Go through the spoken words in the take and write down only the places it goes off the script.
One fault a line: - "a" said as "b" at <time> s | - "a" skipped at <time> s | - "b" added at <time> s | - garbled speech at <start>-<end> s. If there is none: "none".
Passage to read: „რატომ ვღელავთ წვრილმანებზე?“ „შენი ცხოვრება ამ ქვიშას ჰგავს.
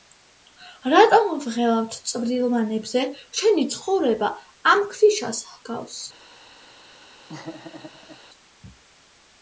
none